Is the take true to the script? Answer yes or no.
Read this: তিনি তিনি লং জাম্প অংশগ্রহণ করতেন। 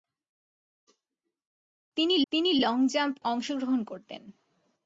yes